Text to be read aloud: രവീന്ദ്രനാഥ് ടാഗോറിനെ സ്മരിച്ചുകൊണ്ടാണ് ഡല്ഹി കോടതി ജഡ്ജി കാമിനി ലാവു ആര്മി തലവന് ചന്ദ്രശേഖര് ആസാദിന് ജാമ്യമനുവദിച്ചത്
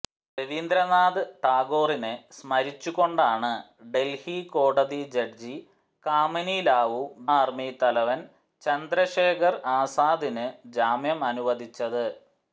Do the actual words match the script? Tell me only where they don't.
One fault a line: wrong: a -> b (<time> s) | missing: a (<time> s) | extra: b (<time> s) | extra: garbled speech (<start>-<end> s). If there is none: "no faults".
no faults